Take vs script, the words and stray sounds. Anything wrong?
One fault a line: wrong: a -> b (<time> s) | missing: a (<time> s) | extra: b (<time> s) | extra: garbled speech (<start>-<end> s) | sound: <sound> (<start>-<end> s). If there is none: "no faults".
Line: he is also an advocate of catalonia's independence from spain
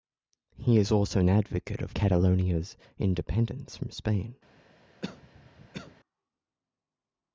sound: cough (5.0-5.9 s)